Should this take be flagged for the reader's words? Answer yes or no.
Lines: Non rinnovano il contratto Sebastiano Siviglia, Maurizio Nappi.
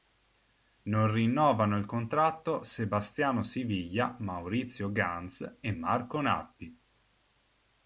yes